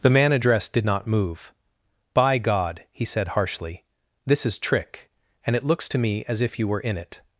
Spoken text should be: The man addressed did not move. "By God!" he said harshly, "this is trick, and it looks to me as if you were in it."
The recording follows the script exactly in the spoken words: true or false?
true